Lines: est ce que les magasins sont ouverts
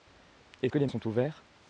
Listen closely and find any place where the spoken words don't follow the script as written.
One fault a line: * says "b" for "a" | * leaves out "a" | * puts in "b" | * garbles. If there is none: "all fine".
* leaves out "ce"
* leaves out "magasins"